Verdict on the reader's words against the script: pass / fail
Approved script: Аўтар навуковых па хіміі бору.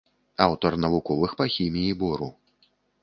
pass